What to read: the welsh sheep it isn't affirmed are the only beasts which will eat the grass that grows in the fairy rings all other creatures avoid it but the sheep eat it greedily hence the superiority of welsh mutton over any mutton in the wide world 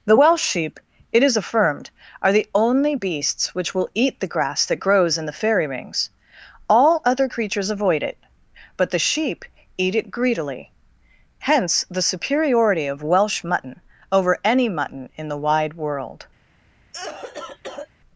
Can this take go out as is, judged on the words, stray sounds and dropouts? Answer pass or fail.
fail